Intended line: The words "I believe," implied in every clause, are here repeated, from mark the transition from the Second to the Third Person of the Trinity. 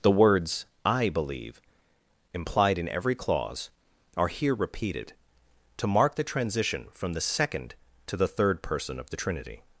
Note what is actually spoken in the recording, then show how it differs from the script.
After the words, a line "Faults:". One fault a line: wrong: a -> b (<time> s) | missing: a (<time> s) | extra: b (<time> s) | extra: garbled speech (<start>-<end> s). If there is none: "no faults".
The words "I believe," implied in every clause, are here repeated, to mark the transition from the Second to the Third Person of the Trinity.
Faults:
wrong: from -> to (5.8 s)